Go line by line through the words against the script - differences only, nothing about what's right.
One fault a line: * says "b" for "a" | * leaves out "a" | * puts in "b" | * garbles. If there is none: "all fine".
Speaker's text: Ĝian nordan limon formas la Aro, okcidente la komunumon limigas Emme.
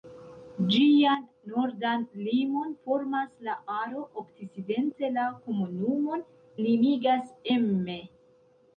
all fine